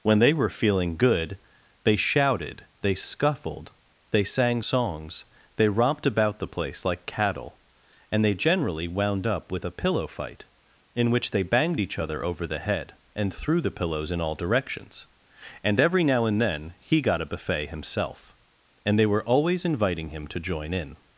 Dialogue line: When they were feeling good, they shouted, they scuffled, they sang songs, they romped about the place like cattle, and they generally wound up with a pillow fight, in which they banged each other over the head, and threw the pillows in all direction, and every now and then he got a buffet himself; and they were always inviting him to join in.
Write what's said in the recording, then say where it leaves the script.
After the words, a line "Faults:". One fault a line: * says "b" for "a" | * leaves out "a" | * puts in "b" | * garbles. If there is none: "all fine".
When they were feeling good, they shouted, they scuffled, they sang songs, they romped about the place like cattle, and they generally wound up with a pillow fight, in which they banged each other over the head, and threw the pillows in all directions, and every now and then he got a buffet himself; and they were always inviting him to join in.
Faults:
* says "directions" for "direction"